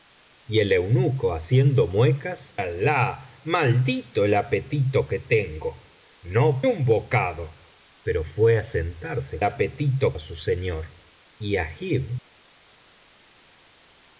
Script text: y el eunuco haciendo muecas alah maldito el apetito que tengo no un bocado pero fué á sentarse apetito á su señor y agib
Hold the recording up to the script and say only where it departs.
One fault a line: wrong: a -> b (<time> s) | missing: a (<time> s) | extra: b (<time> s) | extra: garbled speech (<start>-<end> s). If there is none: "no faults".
no faults